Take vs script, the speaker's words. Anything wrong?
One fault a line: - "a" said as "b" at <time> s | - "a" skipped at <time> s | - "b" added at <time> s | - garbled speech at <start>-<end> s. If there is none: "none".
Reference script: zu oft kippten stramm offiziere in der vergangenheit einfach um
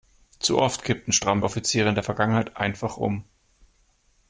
none